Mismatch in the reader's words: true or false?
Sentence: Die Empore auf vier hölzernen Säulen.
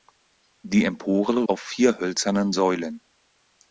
false